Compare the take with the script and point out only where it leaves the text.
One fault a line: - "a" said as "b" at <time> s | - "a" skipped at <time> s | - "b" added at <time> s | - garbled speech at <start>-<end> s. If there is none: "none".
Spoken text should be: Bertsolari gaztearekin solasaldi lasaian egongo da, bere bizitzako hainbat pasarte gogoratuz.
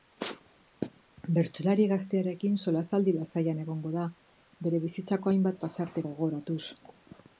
none